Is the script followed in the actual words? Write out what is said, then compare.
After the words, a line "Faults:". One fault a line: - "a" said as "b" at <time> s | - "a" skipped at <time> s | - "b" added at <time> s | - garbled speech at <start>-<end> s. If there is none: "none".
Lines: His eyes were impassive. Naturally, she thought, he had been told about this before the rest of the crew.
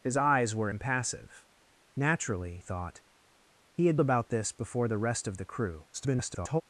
His eyes were impassive. Naturally, thought, he had about this before the rest of the crew. [garbled]
Faults:
- "she" skipped at 2.6 s
- "been told" skipped at 4.0 s
- garbled speech at 5.9-6.6 s